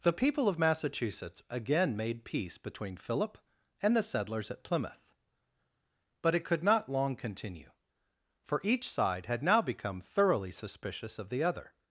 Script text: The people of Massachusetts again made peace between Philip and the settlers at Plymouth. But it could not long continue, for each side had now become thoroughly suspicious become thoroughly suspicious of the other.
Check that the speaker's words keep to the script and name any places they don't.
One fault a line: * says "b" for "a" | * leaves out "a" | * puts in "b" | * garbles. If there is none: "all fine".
* leaves out "become thoroughly suspicious"